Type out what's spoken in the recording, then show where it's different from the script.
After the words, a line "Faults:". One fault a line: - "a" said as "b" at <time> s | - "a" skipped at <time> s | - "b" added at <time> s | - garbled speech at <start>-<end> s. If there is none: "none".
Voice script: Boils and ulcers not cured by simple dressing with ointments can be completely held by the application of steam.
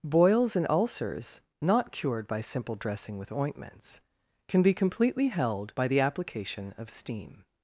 Boils and ulcers not cured by simple dressing with ointments can be completely held by the application of steam.
Faults:
none